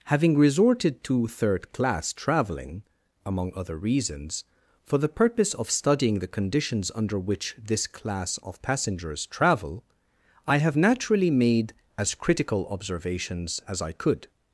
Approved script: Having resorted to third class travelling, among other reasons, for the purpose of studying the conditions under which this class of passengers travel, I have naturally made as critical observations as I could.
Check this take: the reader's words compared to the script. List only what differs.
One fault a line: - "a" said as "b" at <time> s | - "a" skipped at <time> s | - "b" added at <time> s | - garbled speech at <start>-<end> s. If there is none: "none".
none